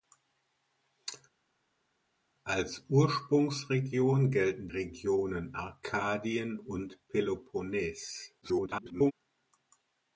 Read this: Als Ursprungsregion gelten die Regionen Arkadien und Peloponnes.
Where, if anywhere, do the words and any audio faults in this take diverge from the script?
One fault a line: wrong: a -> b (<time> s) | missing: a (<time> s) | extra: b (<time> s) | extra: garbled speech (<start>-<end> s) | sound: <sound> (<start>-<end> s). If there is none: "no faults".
missing: die (4.7 s)
extra: garbled speech (8.4-9.1 s)